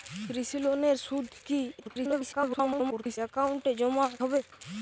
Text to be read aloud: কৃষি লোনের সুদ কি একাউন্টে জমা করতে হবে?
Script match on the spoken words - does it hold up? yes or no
no